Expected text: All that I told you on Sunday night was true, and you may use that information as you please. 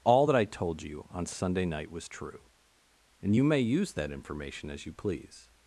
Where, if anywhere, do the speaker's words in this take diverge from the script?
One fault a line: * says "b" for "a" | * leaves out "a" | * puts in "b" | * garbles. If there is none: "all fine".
all fine